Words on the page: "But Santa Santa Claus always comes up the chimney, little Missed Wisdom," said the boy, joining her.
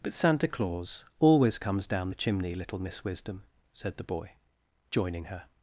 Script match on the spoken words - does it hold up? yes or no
no